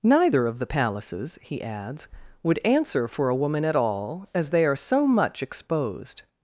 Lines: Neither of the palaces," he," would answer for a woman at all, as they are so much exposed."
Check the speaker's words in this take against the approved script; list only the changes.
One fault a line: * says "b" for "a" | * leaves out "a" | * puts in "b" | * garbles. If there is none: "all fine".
* puts in "adds"